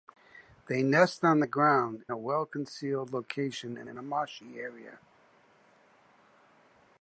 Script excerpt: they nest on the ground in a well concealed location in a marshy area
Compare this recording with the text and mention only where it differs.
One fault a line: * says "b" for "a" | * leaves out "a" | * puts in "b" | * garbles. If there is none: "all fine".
* leaves out "in"
* puts in "in"